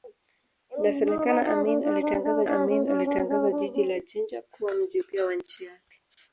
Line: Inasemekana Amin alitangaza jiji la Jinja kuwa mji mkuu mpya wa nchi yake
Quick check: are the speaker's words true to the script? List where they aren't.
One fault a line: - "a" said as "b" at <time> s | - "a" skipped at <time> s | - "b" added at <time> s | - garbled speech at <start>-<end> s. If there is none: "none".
- "Amin alitangaza" added at 2.5 s
- "mkuu" skipped at 5.0 s